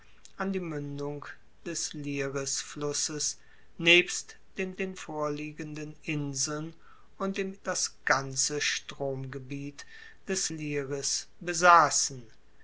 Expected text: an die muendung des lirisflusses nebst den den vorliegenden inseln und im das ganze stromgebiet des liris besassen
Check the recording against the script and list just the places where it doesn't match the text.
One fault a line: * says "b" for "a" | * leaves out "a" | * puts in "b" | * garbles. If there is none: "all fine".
all fine